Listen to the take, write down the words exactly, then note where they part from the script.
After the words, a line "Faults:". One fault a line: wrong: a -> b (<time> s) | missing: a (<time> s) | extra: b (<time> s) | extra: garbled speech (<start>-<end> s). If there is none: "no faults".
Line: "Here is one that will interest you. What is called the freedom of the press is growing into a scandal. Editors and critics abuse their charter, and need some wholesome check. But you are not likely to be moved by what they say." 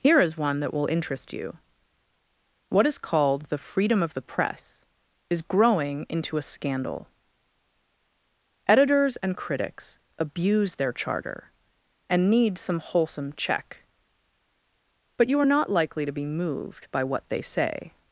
"Here is one that will interest you. What is called the freedom of the press is growing into a scandal. Editors and critics abuse their charter, and need some wholesome check. But you are not likely to be moved by what they say."
Faults:
no faults